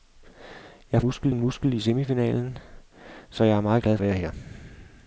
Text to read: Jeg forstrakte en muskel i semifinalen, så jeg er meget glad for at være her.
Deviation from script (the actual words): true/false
true